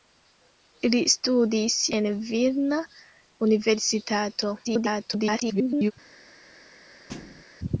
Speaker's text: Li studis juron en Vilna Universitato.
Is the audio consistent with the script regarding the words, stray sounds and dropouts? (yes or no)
no